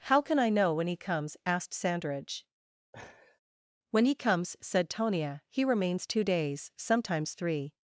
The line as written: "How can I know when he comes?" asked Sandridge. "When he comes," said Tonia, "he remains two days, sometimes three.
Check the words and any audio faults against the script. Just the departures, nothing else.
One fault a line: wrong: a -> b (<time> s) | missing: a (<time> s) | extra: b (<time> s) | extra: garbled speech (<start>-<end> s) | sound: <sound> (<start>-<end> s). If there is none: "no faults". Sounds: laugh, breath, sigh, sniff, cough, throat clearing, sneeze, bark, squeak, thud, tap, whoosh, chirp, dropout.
sound: laugh (2.9-3.4 s)